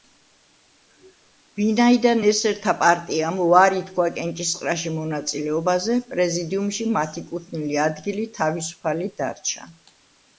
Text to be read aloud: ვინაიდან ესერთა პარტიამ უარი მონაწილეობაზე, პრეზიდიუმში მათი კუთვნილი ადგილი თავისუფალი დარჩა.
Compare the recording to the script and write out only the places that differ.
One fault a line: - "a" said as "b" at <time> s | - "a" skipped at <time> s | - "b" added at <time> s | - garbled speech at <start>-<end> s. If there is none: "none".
- "თქვა კენჭისყრაში" added at 3.9 s